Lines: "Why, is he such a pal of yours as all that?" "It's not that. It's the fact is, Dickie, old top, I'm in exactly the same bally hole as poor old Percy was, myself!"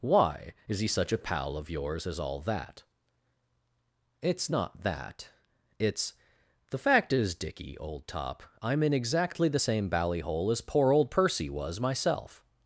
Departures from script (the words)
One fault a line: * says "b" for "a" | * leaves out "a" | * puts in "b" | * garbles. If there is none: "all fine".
all fine